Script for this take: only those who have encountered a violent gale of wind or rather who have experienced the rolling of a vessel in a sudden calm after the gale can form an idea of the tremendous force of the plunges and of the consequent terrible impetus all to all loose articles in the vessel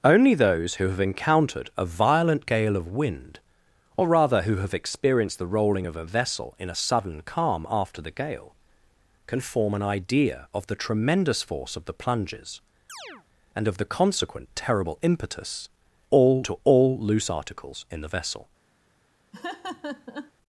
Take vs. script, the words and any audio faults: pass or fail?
fail